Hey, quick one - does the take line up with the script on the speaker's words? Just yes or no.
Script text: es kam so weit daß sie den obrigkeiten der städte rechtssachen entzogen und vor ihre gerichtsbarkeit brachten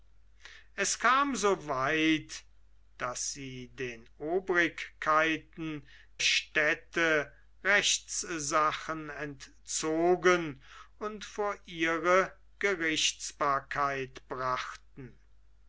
no